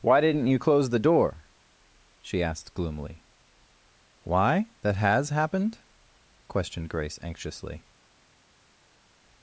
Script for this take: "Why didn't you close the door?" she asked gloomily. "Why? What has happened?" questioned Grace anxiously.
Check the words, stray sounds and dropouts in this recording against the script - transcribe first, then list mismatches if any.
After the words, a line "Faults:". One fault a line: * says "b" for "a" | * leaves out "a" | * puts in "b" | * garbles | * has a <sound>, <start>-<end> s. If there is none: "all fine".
"Why didn't you close the door?" she asked gloomily. "Why? That has happened?" questioned Grace anxiously.
Faults:
* says "That" for "What"